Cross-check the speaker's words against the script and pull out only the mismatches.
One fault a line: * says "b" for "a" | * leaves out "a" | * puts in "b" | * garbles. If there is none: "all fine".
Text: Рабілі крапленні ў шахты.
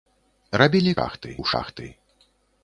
* says "шахты" for "крапленні"